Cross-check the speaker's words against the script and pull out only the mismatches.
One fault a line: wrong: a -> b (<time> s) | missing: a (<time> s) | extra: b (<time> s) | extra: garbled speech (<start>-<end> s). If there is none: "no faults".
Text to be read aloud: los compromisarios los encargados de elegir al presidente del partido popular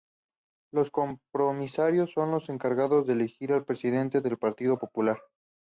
extra: son (2.1 s)